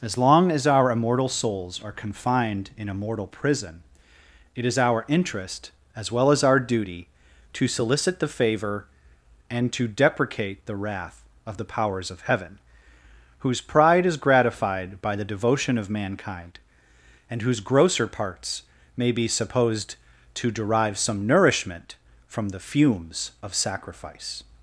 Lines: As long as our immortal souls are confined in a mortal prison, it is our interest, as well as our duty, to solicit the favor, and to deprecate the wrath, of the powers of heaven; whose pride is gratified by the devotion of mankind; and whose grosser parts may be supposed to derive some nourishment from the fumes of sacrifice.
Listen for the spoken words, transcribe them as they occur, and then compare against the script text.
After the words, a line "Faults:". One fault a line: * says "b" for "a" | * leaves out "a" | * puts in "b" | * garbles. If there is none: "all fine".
As long as our immortal souls are confined in a mortal prison, it is our interest, as well as our duty, to solicit the favor, and to deprecate the wrath, of the powers of heaven; whose pride is gratified by the devotion of mankind; and whose grosser parts may be supposed to derive some nourishment from the fumes of sacrifice.
Faults:
all fine